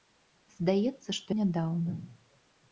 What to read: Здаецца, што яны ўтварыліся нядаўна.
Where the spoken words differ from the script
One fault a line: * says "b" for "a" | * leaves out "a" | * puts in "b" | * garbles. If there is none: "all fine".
* leaves out "яны ўтварыліся"